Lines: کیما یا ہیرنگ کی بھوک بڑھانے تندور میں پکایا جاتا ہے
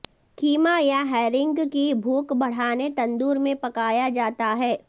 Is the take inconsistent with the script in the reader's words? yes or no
no